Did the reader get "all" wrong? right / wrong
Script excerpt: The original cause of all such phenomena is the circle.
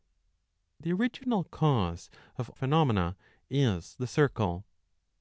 wrong